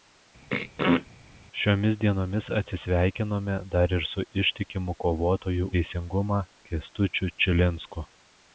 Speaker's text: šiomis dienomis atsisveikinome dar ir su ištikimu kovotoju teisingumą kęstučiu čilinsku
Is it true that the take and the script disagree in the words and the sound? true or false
true